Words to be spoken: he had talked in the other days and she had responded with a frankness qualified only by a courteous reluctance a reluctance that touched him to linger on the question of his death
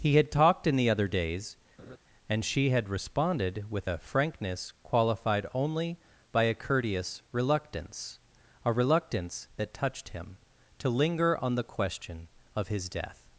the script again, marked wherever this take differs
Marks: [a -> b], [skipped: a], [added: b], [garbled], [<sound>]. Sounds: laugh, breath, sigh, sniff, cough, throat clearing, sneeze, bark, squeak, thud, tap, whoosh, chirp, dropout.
he had talked in the other days [laugh] and she had responded with a frankness qualified only by a courteous reluctance a reluctance that touched him to linger on the question of his death